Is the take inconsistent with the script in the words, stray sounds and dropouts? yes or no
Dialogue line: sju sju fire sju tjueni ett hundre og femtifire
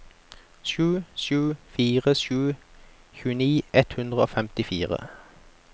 no